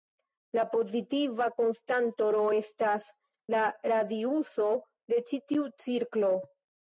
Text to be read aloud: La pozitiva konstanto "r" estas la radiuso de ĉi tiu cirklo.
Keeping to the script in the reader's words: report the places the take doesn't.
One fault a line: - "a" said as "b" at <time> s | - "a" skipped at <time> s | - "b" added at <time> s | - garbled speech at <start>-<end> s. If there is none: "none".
none